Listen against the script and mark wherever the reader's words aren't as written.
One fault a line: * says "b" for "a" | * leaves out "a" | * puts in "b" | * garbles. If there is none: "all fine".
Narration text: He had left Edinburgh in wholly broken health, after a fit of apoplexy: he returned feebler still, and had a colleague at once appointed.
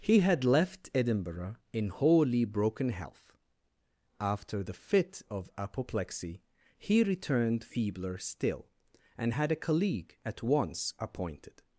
* says "the" for "a"